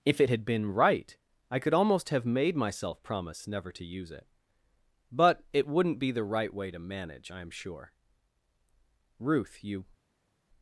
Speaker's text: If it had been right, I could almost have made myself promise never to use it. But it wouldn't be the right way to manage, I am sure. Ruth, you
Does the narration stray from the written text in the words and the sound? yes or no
no